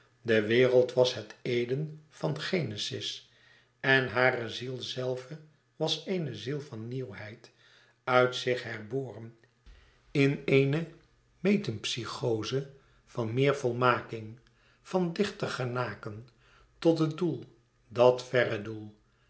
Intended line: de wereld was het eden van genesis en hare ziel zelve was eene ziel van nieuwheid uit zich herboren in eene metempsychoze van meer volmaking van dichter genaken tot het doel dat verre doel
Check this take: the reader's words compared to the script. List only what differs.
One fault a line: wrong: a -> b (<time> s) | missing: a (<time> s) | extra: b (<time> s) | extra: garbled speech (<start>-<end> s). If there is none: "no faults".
no faults